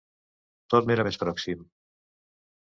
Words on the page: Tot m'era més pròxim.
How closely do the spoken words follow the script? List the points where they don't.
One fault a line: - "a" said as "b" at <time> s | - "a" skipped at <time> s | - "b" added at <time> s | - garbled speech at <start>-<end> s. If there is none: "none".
none